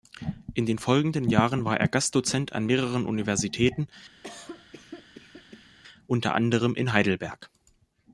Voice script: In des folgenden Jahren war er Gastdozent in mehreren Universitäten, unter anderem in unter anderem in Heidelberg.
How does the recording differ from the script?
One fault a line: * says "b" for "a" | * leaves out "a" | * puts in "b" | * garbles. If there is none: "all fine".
* says "den" for "des"
* says "an" for "in"
* leaves out "unter anderem in"